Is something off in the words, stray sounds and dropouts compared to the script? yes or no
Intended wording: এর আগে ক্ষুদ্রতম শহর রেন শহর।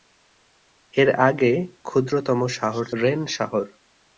no